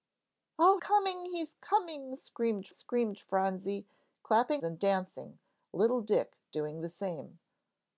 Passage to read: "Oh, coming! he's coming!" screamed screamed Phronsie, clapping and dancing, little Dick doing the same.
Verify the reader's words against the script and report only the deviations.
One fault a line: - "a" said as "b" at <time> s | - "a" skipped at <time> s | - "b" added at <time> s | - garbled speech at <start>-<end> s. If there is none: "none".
none